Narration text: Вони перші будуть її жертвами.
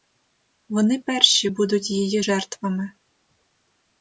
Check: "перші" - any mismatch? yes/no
no